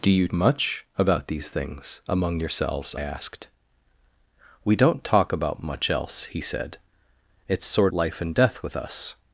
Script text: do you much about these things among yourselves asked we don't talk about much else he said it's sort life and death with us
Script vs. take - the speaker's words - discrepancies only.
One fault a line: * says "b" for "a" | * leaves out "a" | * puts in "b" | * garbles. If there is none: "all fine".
all fine